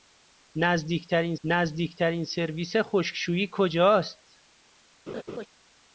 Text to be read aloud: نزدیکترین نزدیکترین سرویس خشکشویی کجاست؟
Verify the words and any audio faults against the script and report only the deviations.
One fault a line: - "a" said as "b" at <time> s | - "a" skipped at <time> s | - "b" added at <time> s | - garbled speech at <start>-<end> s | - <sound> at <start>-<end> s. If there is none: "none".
- laugh at 5.1-5.5 s